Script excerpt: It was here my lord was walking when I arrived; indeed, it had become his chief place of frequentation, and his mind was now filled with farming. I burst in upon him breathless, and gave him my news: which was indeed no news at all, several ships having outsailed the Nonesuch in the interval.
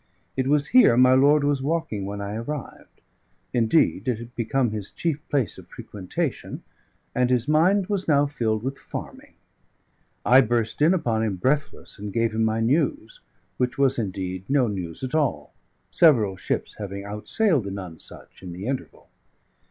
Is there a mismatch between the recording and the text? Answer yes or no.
no